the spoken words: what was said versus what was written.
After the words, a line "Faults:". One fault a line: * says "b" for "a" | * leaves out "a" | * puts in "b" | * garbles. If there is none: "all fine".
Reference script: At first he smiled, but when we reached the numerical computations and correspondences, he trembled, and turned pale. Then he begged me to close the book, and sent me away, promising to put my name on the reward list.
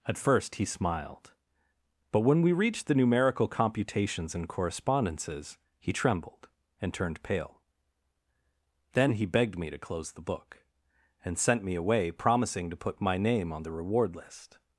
At first he smiled, but when we reached the numerical computations and correspondences, he trembled, and turned pale. Then he begged me to close the book, and sent me away, promising to put my name on the reward list.
Faults:
all fine